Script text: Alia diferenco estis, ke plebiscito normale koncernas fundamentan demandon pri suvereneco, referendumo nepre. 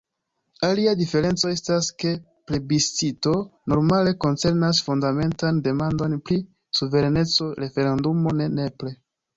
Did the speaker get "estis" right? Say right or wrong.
wrong